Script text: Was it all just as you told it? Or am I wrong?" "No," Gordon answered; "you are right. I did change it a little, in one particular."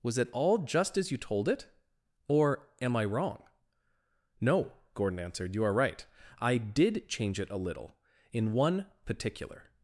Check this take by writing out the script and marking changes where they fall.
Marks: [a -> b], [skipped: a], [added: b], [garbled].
Was it all just as you told it? Or am I wrong?" "No," Gordon answered; "you are right. I did change it a little, in one particular."